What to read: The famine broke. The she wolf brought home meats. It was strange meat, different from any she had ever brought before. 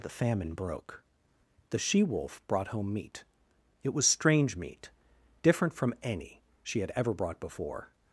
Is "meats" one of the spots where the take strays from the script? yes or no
yes